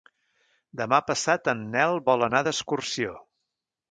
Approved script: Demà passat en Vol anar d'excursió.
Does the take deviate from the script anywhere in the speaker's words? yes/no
yes